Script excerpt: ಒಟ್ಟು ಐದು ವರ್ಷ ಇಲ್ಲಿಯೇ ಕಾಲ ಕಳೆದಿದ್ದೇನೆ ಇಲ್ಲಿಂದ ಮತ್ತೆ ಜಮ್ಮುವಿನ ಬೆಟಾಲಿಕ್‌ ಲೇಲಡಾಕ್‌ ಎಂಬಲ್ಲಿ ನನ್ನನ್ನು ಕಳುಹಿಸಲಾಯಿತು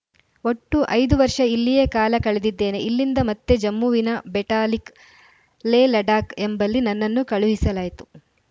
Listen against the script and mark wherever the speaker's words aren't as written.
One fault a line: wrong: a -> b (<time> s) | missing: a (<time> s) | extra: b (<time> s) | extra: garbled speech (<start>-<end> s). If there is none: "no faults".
no faults